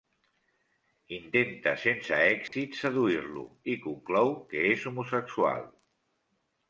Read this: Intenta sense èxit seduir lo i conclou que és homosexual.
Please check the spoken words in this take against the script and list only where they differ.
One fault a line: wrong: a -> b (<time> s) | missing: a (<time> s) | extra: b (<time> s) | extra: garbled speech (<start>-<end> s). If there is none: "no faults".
no faults